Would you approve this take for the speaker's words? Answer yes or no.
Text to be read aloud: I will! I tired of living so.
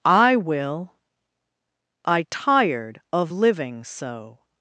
yes